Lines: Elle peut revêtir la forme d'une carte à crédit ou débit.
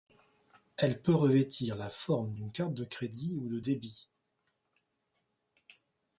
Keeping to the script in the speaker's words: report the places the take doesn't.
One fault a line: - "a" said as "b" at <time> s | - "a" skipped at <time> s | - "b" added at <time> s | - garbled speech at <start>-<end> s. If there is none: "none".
- "à" said as "de" at 2.7 s
- "de" added at 3.5 s